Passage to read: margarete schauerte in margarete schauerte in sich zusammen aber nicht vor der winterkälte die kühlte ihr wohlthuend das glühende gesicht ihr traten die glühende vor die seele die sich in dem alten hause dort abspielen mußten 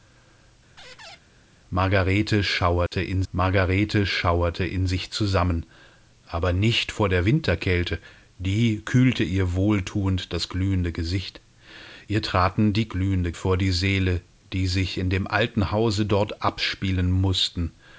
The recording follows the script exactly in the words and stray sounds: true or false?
false